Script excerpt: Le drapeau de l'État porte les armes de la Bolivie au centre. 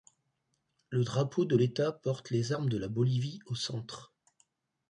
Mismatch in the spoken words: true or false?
false